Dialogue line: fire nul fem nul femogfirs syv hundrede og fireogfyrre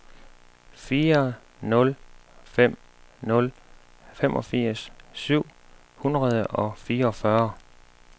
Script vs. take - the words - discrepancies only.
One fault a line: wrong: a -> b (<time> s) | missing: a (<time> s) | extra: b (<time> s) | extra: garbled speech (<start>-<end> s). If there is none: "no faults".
no faults